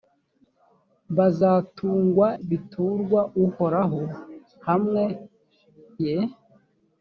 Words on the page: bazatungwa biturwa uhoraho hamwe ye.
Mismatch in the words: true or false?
false